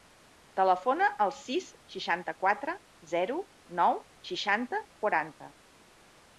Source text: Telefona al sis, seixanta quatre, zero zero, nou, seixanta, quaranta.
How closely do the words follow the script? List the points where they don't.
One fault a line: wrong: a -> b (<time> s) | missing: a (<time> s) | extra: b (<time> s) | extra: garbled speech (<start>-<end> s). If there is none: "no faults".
missing: zero (3.4 s)